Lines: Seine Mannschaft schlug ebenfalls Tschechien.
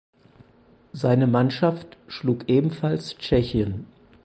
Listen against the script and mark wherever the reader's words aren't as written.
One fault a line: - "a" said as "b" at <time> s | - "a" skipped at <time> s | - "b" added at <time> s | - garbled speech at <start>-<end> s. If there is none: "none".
none